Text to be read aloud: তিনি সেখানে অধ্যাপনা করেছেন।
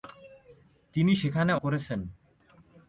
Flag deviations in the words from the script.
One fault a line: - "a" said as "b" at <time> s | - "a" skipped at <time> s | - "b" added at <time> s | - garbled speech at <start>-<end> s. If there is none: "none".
- "অধ্যাপনা" skipped at 1.5 s